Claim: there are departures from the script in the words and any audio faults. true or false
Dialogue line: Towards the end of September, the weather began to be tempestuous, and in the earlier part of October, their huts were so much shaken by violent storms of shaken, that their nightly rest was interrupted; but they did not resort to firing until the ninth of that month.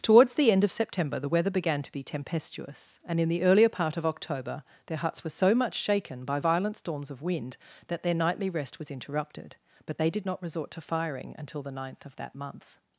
true